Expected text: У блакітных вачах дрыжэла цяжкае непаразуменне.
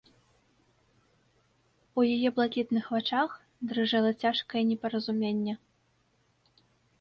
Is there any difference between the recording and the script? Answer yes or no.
yes